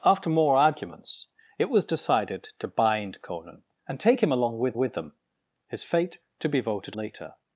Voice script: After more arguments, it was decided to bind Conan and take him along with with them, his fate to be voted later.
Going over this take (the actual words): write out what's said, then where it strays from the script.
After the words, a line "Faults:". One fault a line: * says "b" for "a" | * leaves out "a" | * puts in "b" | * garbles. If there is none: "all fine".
After more arguments, it was decided to bind Conan and take him along with with them, his fate to be voted later.
Faults:
all fine